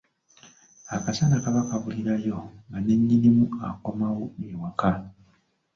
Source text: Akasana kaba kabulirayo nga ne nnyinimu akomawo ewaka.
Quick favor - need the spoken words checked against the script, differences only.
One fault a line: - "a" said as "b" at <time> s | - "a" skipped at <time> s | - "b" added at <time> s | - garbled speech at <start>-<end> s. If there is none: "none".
none